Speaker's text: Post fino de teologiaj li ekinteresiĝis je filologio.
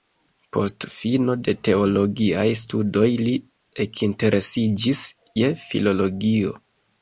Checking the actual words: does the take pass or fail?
fail